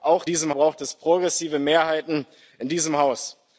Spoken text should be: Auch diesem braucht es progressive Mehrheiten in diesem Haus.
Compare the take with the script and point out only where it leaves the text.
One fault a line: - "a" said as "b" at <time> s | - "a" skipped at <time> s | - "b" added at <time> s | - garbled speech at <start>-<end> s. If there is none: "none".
none